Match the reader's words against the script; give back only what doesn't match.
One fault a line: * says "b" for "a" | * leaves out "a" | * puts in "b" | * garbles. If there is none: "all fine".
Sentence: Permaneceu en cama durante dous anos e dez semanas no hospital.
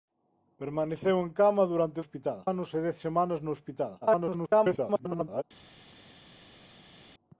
* says "hospital" for "dous"
* garbles